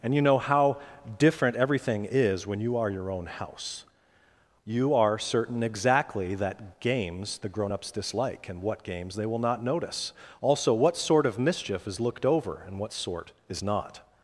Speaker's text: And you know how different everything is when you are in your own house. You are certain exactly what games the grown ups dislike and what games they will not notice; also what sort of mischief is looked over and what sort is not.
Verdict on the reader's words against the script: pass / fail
fail